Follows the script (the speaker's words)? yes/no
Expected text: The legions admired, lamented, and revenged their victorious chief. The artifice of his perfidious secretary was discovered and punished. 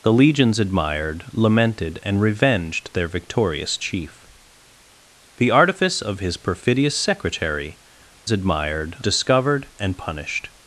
no